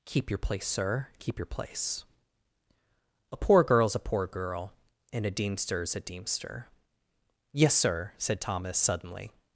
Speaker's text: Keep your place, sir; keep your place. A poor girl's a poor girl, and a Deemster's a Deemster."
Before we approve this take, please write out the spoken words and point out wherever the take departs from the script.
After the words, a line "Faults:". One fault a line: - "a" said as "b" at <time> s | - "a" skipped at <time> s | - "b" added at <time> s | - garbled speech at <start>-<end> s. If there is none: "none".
Keep your place, sir; keep your place. A poor girl's a poor girl, and a Deemster's a Deemster." "Yes, sir," said Thomas, suddenly
Faults:
- "Yes sir said Thomas suddenly" added at 7.5 s